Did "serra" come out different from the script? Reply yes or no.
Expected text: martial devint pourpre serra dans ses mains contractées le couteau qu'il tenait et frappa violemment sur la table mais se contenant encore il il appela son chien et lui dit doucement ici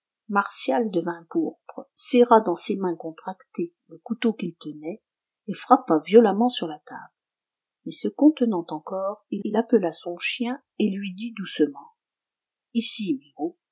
no